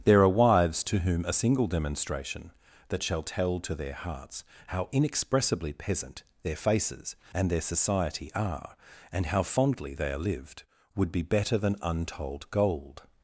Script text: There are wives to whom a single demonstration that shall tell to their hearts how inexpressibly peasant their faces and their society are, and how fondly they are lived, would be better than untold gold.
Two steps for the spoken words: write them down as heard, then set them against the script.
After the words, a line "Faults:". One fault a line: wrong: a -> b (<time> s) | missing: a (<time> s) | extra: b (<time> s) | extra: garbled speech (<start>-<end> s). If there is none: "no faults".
There are wives to whom a single demonstration that shall tell to their hearts how inexpressibly peasant their faces and their society are, and how fondly they are lived, would be better than untold gold.
Faults:
no faults